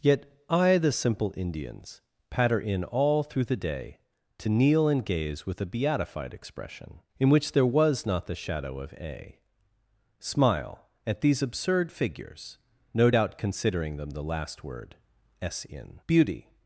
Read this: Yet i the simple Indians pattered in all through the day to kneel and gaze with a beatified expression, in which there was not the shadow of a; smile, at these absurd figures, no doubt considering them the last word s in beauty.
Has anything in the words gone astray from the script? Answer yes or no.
yes